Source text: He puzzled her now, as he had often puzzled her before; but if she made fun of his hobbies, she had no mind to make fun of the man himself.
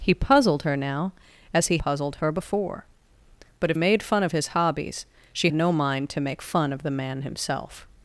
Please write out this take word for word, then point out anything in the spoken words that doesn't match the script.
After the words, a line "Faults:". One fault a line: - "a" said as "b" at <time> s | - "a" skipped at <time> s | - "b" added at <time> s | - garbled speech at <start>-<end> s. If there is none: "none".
He puzzled her now, as he puzzled her before; but if made fun of his hobbies, she no mind to make fun of the man himself.
Faults:
- "had often" skipped at 1.8 s
- "she" skipped at 3.8 s
- "had" skipped at 5.5 s